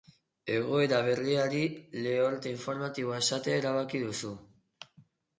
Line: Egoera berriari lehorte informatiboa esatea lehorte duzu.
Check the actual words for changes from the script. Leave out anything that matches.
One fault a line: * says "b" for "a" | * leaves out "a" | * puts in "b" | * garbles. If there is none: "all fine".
* says "erabaki" for "lehorte"